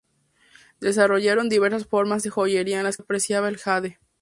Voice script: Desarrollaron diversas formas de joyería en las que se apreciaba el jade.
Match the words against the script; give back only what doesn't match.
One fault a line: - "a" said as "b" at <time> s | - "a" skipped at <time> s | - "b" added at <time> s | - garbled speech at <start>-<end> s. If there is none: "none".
- "que se" skipped at 3.0 s